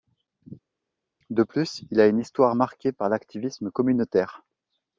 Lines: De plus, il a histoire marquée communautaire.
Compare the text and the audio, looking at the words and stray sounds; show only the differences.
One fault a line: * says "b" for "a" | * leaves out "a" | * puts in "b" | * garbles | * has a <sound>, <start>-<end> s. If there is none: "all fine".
* puts in "une"
* puts in "par l'activisme"